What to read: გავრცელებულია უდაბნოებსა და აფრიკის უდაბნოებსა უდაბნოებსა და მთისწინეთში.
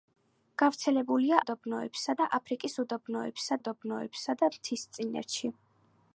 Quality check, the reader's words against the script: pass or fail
pass